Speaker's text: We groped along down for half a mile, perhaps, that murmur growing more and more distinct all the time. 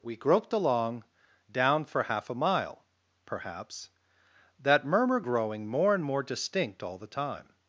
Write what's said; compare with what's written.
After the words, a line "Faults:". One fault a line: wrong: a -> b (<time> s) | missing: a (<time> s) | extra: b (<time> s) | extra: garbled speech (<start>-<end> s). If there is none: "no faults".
We groped along down for half a mile, perhaps, that murmur growing more and more distinct all the time.
Faults:
no faults